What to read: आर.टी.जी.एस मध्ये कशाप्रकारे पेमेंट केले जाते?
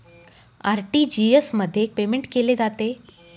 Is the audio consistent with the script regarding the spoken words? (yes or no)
no